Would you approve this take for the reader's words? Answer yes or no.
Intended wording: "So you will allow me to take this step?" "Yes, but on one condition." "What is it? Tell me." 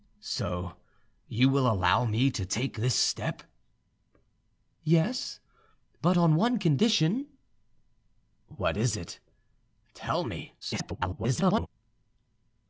no